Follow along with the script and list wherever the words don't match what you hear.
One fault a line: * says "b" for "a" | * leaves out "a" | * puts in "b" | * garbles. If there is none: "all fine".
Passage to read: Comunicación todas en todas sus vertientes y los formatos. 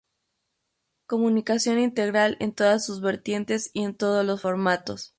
* says "integral" for "todas"
* puts in "en todos"